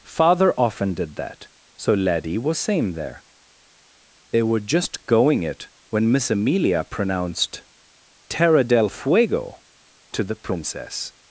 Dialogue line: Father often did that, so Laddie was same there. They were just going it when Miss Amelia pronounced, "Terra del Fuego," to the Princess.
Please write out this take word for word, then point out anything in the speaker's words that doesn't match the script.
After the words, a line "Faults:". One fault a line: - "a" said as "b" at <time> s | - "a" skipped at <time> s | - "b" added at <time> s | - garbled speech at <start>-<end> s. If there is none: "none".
Father often did that, so Laddie was same there. They were just going it when Miss Amelia pronounced, "Terra del Fuego," to the Princess.
Faults:
none